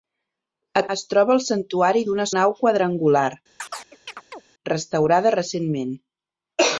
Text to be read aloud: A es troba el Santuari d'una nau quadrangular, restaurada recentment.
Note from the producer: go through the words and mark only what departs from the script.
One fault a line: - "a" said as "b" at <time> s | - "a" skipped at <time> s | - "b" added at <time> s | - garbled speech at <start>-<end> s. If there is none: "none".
none